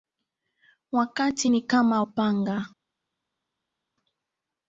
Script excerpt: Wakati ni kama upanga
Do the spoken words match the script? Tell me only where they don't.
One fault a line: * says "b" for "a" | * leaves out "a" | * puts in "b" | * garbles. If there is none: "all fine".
all fine